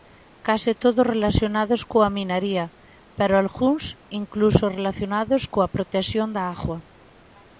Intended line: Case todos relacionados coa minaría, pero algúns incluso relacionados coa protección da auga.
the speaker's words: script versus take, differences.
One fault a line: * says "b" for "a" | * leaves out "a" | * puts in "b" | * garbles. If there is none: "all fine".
all fine